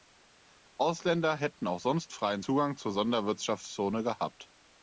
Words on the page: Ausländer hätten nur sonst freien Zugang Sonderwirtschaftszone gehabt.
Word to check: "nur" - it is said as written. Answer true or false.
false